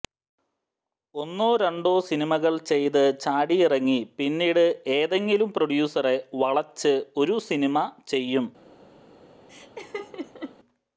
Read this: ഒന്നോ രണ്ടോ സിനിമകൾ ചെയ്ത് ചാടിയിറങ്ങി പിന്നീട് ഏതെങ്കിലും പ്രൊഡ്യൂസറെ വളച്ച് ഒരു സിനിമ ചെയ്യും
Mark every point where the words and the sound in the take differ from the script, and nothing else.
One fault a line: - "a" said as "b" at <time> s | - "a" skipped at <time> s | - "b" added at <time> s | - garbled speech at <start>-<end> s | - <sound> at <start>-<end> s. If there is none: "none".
- laugh at 9.5-10.6 s